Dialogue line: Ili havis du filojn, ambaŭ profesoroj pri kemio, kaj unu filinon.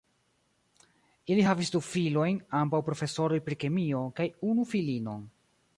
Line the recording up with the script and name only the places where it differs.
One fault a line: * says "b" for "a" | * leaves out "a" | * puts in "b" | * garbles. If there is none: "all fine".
all fine